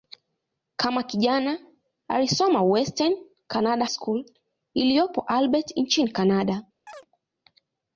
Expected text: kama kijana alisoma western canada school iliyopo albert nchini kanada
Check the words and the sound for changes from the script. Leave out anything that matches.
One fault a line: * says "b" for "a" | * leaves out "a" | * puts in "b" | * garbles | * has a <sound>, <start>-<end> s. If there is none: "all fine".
* has a chirp, 6.9-7.1 s